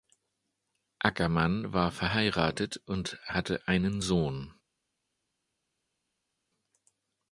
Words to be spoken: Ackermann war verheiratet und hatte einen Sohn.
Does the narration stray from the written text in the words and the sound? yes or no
no